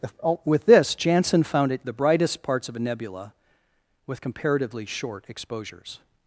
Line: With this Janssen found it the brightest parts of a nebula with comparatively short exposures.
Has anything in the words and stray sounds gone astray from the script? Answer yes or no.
no